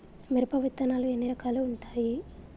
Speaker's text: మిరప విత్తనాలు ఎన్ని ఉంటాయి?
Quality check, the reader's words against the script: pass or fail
fail